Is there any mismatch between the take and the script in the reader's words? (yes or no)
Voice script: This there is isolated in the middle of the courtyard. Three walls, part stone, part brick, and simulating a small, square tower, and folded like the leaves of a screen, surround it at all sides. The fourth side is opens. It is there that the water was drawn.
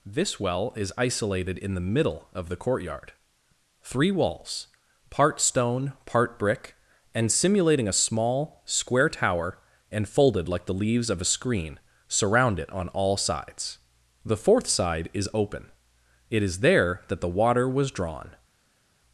yes